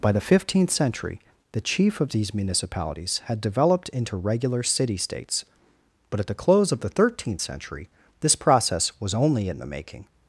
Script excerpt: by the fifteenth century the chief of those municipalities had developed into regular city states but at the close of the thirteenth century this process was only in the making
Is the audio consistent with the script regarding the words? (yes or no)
no